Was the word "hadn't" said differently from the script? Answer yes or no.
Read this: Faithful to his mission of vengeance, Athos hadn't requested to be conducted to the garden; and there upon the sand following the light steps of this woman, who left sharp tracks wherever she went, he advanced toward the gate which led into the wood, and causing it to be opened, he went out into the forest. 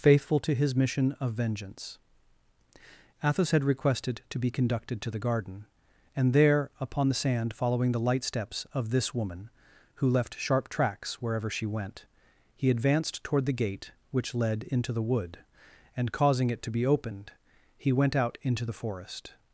yes